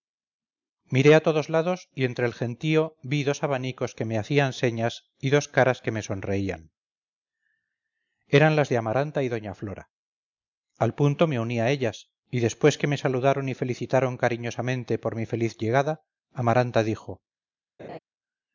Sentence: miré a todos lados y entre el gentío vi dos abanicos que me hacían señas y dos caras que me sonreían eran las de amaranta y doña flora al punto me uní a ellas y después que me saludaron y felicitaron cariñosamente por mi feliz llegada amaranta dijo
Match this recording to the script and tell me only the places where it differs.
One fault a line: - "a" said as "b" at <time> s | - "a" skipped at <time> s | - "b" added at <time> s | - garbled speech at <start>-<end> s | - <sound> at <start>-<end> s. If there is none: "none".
- laugh at 17.8-18.0 s